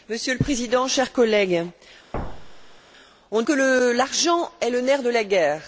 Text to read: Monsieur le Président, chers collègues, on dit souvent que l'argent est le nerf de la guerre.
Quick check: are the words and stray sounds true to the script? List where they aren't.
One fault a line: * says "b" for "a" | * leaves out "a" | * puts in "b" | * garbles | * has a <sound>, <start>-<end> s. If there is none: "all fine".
* has a thud, 2.1-2.8 s
* leaves out "dit souvent"